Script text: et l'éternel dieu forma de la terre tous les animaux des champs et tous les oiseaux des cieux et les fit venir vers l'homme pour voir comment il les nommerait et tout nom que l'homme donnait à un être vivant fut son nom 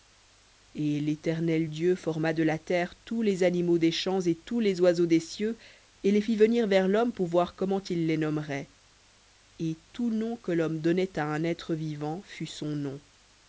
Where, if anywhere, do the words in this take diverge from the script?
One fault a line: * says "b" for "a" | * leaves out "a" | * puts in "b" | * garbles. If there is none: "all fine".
all fine